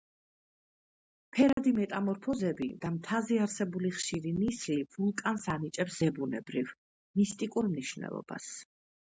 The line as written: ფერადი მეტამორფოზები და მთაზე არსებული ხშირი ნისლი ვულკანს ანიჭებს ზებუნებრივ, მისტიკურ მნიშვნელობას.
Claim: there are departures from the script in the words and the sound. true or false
true